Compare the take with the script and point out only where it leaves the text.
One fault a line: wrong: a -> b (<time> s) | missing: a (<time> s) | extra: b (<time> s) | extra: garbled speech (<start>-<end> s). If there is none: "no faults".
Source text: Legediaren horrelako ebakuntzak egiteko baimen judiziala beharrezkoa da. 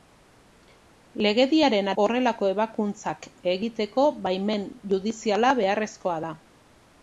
no faults